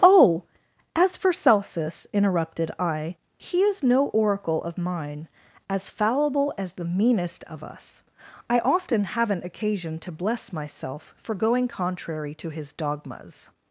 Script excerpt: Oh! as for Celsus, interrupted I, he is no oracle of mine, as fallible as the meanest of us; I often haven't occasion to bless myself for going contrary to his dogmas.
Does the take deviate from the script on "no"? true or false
false